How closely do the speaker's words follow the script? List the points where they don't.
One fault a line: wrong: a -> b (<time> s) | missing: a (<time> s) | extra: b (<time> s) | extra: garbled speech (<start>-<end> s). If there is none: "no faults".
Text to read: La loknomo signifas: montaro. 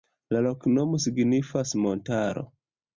no faults